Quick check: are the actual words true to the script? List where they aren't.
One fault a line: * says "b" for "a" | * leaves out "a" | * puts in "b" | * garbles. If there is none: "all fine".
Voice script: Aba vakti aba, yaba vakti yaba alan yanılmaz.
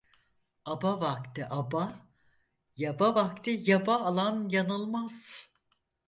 all fine